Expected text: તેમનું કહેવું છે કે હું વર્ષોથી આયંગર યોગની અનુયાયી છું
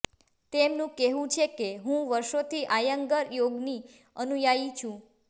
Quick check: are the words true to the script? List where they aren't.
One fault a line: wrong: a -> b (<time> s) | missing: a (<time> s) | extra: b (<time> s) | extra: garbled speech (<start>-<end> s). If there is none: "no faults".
no faults